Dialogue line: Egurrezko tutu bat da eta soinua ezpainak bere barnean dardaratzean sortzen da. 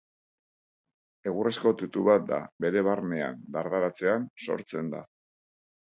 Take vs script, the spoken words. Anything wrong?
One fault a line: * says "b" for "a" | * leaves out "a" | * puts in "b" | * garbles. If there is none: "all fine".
* leaves out "eta soinua ezpainak"